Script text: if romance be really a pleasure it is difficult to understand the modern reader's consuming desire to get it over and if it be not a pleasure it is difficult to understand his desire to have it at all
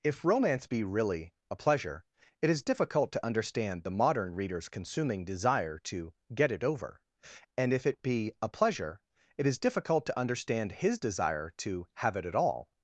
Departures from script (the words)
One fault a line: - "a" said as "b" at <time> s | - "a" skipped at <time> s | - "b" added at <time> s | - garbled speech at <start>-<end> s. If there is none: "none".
- "not" skipped at 8.3 s